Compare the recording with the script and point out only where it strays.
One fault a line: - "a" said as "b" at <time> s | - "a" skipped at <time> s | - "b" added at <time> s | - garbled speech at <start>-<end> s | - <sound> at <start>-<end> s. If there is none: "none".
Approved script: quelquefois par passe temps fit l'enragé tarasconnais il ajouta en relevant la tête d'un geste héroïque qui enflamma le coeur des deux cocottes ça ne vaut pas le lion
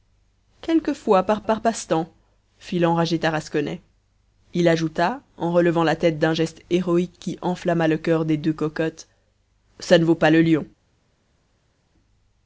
- "par" added at 1.4 s